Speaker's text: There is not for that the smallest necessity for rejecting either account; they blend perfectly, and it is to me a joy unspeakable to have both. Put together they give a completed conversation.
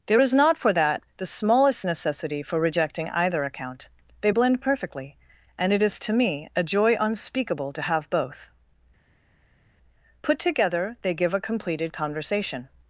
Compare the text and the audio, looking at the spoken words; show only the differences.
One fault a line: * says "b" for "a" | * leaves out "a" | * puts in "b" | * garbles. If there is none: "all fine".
all fine